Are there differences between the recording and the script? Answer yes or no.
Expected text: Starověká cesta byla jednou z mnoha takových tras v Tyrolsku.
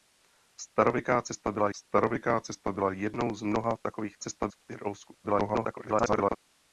yes